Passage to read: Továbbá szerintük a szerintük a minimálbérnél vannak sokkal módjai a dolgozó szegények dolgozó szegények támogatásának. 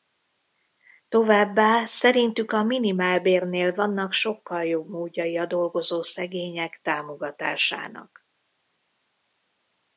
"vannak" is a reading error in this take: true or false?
false